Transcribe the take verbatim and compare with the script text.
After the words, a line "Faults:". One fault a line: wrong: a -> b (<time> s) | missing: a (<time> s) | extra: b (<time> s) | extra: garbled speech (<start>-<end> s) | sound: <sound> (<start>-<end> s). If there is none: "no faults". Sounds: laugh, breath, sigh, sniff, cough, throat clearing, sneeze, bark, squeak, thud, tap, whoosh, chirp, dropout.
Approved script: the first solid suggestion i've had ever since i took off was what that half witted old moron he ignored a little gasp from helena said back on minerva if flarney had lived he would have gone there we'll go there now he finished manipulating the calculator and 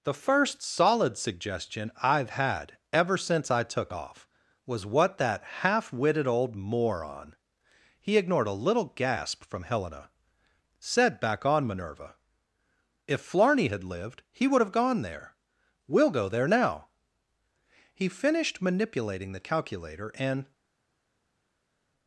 the first solid suggestion i've had ever since i took off was what that half witted old moron he ignored a little gasp from helena said back on minerva if flarney had lived he would have gone there we'll go there now he finished manipulating the calculator and
Faults:
no faults